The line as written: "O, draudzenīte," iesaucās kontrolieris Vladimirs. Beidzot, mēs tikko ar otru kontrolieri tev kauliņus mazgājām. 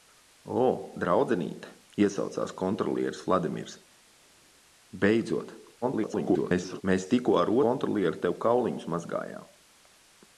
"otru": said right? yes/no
no